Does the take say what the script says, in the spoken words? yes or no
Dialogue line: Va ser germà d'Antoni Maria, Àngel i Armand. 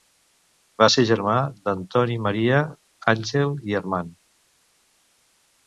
yes